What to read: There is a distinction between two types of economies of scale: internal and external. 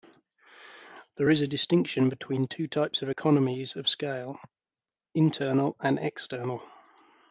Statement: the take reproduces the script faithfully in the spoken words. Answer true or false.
true